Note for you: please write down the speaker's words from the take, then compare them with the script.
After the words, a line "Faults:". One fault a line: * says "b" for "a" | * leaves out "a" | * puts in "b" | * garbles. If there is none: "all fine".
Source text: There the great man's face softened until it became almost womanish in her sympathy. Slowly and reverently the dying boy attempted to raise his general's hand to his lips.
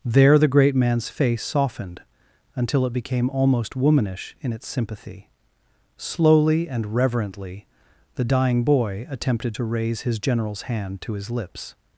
There the great man's face softened until it became almost womanish in its sympathy. Slowly and reverently the dying boy attempted to raise his general's hand to his lips.
Faults:
* says "its" for "her"